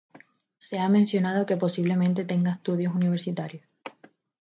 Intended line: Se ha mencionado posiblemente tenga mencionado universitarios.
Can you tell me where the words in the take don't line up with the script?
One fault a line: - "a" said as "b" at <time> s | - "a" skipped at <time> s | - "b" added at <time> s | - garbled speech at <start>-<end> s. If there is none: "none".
- "que" added at 1.4 s
- "mencionado" said as "estudios" at 2.5 s